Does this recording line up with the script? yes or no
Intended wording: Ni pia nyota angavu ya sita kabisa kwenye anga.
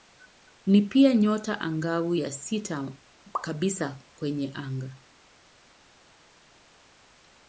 yes